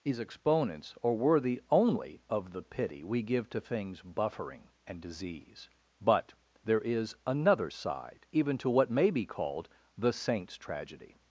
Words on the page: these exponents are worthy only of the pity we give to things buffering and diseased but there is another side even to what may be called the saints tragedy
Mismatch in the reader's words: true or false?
true